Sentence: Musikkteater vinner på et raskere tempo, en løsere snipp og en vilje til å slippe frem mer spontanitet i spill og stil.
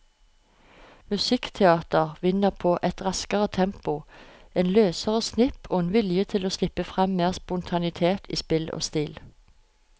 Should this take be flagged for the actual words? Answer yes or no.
no